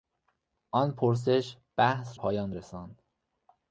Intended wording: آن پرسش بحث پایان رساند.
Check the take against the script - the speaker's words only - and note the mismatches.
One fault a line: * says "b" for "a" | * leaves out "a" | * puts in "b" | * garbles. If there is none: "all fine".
all fine